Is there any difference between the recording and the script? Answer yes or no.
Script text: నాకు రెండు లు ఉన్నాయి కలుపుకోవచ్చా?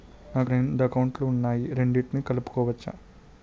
yes